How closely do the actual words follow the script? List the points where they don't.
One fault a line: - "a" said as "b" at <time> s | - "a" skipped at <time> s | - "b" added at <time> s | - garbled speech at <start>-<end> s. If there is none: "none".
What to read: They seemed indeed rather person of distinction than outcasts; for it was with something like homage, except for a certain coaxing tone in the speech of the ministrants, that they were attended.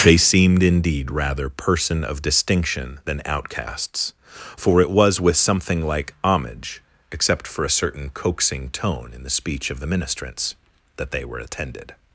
none